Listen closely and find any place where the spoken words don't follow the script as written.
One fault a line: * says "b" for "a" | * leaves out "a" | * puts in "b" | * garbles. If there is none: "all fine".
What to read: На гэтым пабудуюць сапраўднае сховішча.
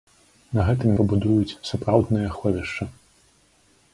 all fine